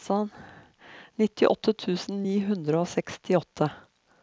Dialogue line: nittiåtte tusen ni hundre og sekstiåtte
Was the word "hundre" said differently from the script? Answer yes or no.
no